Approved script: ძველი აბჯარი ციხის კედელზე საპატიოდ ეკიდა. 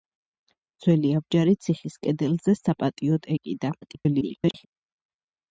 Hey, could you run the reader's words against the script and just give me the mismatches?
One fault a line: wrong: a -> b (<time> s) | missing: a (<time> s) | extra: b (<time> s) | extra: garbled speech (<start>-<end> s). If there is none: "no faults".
extra: garbled speech (3.8-4.7 s)